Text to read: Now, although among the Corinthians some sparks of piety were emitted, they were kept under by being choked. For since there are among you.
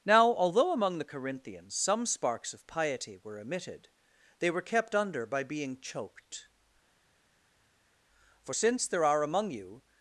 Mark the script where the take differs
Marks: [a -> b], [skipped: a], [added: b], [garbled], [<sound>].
Now, although among the Corinthians some sparks of piety were emitted, they were kept under by being choked. For since there are among you.